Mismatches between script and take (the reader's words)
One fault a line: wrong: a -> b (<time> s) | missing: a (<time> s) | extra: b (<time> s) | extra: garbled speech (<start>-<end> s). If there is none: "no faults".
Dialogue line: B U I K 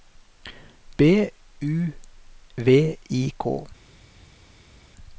extra: V (2.6 s)